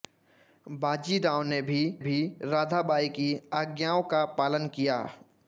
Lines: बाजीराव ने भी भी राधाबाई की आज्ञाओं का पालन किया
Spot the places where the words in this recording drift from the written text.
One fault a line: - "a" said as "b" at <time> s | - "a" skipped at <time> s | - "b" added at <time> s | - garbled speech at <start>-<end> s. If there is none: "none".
none